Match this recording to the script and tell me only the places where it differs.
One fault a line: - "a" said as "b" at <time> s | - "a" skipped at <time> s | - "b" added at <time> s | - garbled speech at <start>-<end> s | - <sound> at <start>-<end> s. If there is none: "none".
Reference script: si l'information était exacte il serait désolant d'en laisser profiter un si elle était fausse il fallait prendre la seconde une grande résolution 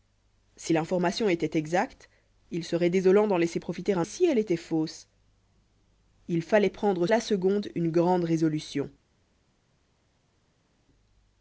none